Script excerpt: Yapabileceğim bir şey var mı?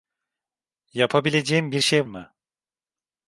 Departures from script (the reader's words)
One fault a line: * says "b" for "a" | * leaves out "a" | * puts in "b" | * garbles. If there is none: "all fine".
* leaves out "var"